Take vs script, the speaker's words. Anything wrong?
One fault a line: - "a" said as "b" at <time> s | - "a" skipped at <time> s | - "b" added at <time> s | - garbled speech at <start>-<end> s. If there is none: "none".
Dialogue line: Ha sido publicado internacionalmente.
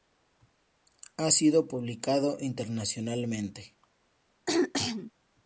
none